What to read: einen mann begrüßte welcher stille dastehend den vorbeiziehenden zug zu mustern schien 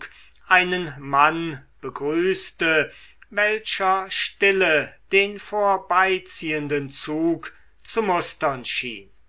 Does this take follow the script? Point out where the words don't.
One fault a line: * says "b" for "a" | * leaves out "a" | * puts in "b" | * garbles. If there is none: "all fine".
* leaves out "dastehend"